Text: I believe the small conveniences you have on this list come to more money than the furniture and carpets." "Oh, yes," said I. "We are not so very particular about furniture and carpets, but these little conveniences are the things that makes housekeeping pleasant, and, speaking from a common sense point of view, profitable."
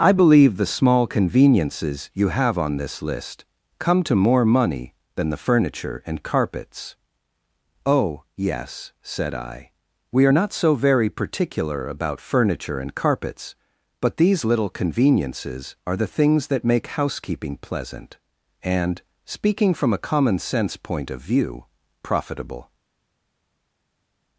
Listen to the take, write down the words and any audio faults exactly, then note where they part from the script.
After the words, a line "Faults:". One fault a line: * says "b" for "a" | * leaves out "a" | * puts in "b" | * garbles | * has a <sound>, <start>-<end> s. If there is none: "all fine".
I believe the small conveniences you have on this list come to more money than the furniture and carpets." "Oh, yes," said I. "We are not so very particular about furniture and carpets, but these little conveniences are the things that make housekeeping pleasant, and, speaking from a common sense point of view, profitable."
Faults:
* says "make" for "makes"